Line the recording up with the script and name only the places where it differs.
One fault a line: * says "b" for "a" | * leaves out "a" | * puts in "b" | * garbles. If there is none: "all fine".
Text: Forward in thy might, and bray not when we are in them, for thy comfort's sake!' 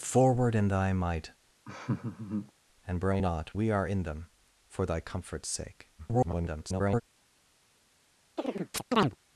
* leaves out "when"
* garbles